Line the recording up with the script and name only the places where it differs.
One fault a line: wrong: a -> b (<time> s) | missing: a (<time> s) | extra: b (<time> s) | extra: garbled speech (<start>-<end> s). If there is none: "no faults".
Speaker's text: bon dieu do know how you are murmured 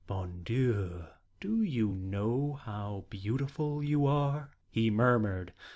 extra: you (1.6 s)
extra: beautiful (3.1 s)
extra: he (4.7 s)